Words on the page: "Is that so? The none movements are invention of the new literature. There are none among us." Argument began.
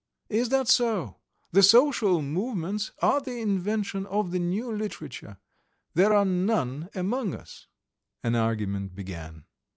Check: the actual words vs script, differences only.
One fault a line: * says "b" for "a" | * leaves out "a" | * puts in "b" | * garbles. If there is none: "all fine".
* says "social" for "none"
* puts in "the"
* puts in "An"